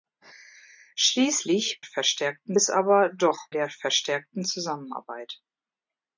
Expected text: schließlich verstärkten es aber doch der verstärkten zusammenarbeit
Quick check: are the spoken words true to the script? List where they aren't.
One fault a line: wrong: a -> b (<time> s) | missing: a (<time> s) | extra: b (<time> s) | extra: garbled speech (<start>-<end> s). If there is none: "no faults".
no faults